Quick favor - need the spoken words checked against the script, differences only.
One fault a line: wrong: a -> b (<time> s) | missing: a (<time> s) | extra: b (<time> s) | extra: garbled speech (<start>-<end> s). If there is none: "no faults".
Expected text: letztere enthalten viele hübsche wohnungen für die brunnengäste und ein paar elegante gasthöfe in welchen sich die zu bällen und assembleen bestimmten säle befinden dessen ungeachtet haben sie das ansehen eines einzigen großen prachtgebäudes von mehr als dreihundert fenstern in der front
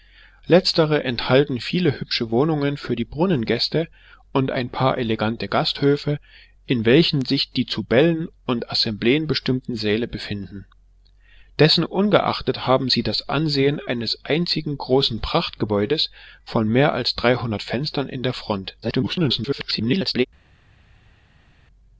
extra: garbled speech (18.8-20.3 s)